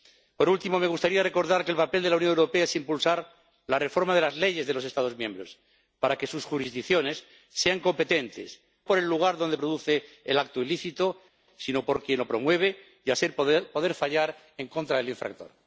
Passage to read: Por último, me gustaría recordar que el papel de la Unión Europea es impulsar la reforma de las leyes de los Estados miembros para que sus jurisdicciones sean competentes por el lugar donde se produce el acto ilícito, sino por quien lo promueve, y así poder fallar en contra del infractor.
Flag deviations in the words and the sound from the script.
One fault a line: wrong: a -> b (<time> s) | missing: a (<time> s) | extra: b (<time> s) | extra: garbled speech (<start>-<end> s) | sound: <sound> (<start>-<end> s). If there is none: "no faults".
no faults